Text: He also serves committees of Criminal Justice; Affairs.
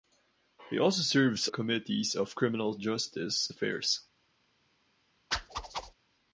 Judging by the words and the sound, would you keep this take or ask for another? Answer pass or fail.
fail